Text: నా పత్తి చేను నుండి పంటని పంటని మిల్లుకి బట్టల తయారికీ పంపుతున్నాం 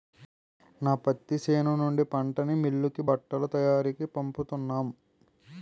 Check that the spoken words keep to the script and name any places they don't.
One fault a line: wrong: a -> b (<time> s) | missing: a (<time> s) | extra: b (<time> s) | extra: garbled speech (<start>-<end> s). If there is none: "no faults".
missing: పంటని (2.5 s)